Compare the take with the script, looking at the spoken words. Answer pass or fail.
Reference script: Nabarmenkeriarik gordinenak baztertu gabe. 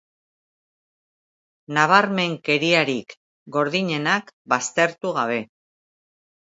pass